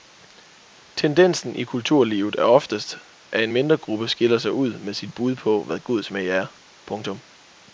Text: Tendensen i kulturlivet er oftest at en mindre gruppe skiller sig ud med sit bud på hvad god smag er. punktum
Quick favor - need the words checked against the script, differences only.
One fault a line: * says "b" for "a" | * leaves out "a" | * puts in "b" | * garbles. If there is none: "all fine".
all fine